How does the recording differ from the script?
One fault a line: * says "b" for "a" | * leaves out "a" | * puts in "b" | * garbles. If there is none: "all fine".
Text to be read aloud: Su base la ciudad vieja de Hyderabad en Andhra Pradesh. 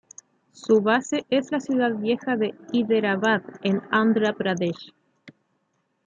* puts in "es"